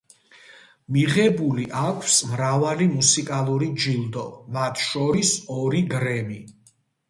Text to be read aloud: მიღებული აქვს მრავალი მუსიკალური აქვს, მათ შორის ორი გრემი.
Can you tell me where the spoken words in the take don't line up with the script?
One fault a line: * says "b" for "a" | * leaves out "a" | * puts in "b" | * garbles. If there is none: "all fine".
* says "ჯილდო" for "აქვს"